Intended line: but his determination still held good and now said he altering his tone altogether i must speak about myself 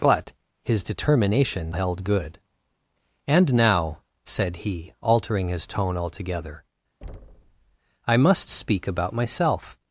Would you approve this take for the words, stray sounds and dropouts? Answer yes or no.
no